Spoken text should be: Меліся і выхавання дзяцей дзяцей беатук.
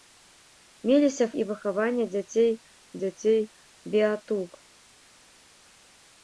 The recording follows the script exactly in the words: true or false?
true